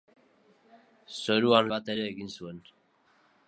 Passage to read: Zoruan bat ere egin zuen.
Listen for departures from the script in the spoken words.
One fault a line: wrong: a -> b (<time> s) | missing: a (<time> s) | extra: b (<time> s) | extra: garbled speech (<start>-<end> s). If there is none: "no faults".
no faults